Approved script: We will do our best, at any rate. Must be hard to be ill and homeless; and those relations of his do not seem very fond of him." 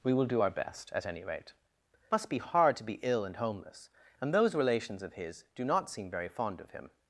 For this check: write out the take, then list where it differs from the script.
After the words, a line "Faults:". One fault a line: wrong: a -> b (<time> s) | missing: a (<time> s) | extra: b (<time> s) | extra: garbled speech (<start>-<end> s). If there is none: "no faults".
We will do our best, at any rate. Must be hard to be ill and homeless; and those relations of his do not seem very fond of him."
Faults:
no faults